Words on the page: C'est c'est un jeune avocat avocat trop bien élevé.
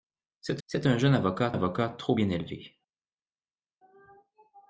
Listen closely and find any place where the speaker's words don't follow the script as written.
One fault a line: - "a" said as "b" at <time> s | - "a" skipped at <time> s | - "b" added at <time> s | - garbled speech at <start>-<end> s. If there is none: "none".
none